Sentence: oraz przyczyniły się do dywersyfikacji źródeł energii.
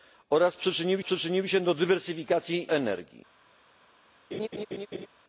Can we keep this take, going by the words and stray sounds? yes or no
no